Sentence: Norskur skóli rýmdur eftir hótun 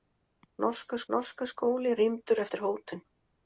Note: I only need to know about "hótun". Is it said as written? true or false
true